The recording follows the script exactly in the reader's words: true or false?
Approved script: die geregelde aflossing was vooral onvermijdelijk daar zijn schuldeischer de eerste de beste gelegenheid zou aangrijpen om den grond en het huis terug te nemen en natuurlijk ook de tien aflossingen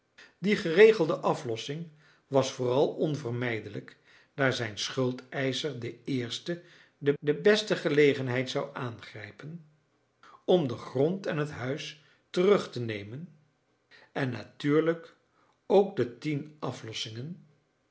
false